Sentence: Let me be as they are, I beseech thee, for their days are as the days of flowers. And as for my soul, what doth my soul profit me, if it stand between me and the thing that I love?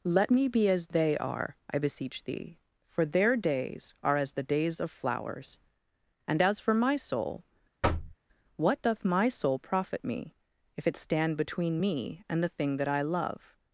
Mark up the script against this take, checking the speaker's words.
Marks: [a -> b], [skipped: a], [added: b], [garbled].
Let me be as they are, I beseech thee, for their days are as the days of flowers. And as for my soul, what doth my soul profit me, if it stand between me and the thing that I love?